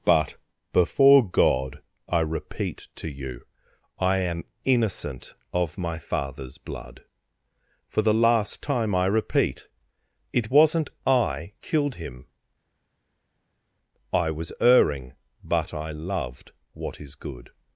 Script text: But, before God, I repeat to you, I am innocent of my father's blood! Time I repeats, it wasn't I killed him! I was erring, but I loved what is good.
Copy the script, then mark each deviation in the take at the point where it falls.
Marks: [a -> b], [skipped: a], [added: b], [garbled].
But, before God, I repeat to you, I am innocent of my father's blood! [added: For the last] Time I [repeats, -> repeat] it wasn't I killed him! I was erring, but I loved what is good.